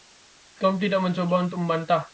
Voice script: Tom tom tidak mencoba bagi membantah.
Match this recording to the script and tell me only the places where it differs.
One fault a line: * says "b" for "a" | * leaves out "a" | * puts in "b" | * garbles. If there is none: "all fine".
* leaves out "tom"
* says "untuk" for "bagi"